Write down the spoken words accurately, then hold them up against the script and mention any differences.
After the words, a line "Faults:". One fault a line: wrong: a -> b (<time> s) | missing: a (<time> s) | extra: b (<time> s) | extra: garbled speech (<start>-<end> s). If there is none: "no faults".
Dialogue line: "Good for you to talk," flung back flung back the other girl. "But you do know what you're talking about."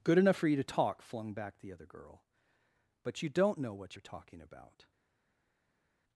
"Good enough for you to talk," flung back the other girl. "But you don't know what you're talking about."
Faults:
extra: enough (0.2 s)
missing: flung back (1.6 s)
wrong: do -> don't (3.3 s)